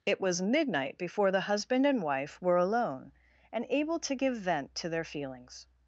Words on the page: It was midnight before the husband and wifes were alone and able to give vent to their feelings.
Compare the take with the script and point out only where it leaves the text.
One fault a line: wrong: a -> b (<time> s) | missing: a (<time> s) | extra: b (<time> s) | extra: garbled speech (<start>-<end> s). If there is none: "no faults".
wrong: wifes -> wife (2.0 s)